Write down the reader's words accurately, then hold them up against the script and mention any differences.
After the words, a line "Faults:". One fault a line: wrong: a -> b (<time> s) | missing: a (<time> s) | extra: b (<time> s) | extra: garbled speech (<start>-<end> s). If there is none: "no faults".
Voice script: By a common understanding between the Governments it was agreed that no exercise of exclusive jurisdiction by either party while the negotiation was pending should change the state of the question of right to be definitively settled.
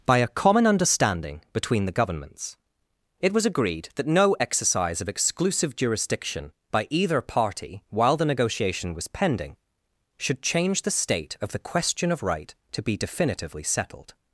By a common understanding between the Governments it was agreed that no exercise of exclusive jurisdiction by either party while the negotiation was pending should change the state of the question of right to be definitively settled.
Faults:
no faults